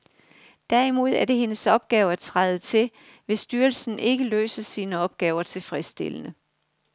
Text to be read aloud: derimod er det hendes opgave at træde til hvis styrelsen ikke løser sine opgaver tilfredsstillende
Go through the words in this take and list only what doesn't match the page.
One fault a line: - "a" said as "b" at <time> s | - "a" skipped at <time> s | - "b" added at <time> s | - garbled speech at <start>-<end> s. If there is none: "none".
none